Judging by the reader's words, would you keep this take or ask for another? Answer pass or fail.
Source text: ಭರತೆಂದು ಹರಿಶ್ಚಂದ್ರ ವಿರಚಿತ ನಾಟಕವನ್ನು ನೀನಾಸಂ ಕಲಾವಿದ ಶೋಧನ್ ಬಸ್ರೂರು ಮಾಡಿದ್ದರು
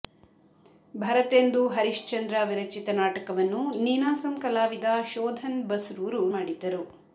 pass